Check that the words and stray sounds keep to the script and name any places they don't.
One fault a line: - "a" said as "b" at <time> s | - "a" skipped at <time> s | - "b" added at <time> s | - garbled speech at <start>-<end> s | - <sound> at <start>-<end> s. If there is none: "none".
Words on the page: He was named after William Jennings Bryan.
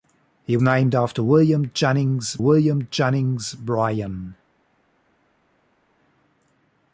- "was" skipped at 0.6 s
- "William Jennings" added at 2.4 s